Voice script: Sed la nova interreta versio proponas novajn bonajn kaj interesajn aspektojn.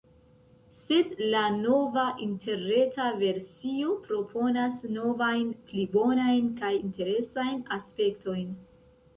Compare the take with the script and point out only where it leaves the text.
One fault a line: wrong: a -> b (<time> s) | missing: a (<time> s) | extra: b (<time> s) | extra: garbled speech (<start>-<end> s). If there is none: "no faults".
extra: pli (5.7 s)